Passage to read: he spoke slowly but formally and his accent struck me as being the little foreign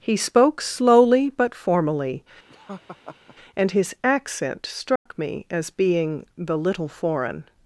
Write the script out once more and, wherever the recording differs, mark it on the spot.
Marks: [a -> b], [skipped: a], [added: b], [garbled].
he spoke slowly but formally and his accent struck me as being the little foreign